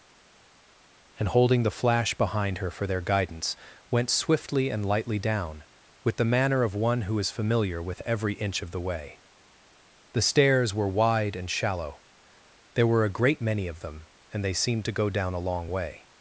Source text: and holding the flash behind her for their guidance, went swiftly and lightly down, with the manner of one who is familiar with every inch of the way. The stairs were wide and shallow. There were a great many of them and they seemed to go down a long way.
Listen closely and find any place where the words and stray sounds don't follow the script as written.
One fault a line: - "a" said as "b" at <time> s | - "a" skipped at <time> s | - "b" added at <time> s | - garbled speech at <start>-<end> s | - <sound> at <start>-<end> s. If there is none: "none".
none